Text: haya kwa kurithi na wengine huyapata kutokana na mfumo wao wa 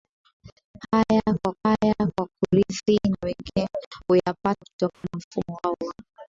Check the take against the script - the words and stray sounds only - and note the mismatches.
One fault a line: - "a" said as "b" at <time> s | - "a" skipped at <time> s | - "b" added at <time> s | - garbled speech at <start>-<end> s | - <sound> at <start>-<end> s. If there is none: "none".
- "haya kwa" added at 1.6 s
- dropout at 4.9-5.0 s